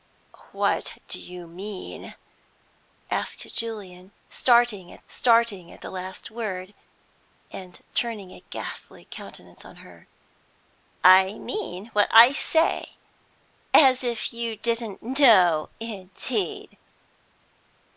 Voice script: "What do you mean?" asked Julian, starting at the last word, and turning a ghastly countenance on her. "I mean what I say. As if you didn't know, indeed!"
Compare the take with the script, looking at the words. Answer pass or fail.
fail